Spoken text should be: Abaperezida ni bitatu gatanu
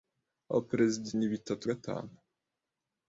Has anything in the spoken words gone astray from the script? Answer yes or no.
no